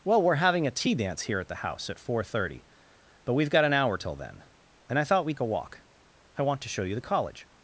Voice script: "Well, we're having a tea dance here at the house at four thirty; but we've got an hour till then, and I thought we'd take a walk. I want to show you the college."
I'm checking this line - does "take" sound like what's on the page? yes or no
no